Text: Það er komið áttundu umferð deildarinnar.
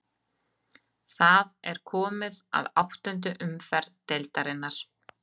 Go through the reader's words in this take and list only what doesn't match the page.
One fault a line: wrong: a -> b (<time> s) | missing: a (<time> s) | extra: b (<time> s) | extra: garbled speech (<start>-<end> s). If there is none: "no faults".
extra: að (2.6 s)